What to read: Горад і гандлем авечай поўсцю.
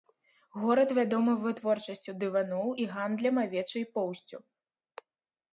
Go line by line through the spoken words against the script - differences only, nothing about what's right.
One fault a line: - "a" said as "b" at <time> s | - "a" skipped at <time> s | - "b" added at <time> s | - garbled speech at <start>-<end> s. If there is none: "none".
- "вядомы вытворчасцю дываноў" added at 1.0 s